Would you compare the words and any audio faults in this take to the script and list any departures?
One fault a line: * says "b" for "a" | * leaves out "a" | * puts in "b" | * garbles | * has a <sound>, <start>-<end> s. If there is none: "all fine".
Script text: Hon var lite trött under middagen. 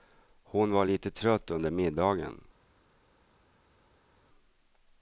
all fine